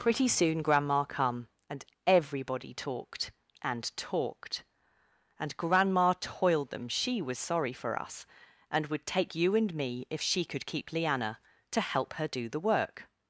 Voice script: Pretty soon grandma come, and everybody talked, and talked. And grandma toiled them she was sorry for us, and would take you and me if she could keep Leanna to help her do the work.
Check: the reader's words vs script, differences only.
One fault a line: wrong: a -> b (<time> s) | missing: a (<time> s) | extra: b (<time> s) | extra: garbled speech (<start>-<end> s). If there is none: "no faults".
no faults